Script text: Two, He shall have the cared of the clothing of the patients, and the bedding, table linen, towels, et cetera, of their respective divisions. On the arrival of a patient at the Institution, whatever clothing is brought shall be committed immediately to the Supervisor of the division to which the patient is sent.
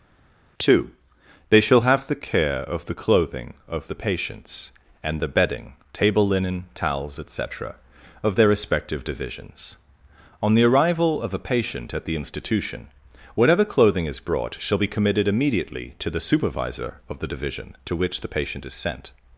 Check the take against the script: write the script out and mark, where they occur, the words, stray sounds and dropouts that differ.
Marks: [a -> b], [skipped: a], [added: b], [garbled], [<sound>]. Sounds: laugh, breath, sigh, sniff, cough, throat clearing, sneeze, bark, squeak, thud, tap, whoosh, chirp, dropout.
Two, [He -> They] shall have the [cared -> care] of the clothing of the patients, and the bedding, table linen, towels, et cetera, of their respective divisions. On the arrival of a patient at the Institution, whatever clothing is brought shall be committed immediately to the Supervisor of the division to which the patient is sent.